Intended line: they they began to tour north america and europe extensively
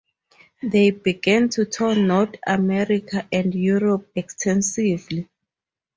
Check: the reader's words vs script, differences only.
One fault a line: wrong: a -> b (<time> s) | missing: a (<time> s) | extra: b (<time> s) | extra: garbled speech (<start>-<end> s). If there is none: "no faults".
missing: they (0.9 s)